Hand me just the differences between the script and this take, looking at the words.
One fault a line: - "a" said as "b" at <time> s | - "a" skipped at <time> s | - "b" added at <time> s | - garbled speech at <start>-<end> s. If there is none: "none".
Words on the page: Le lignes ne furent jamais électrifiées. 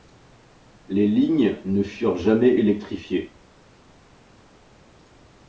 - "Le" said as "Les" at 0.9 s